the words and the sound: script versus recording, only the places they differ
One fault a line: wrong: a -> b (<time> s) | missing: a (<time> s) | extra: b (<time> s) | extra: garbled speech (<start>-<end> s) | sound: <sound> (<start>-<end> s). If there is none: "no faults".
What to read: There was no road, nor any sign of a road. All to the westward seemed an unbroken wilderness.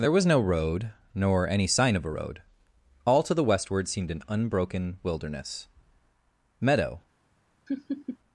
extra: Meadow (6.6 s)
sound: laugh (7.7-8.2 s)